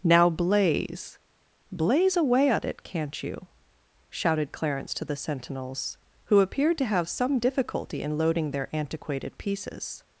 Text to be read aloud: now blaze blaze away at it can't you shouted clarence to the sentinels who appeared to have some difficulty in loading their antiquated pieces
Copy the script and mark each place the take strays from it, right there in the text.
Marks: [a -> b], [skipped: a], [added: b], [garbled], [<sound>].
now blaze blaze away at it can't you shouted clarence to the sentinels who appeared to have some difficulty in loading their antiquated pieces